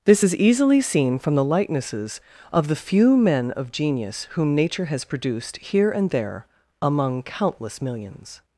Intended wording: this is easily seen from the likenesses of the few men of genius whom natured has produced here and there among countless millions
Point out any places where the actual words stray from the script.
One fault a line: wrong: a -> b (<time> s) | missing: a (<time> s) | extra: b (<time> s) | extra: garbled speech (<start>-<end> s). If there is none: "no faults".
wrong: natured -> nature (4.5 s)